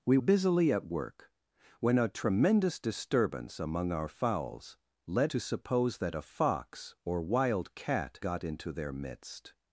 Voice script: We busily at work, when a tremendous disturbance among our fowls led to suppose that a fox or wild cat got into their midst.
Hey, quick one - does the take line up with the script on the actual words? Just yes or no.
yes